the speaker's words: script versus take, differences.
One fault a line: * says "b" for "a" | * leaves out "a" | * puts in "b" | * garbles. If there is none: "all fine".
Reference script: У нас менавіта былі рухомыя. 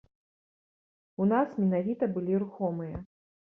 all fine